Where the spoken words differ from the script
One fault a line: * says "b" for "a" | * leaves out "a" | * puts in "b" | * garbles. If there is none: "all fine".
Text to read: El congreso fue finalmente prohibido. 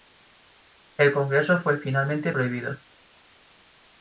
all fine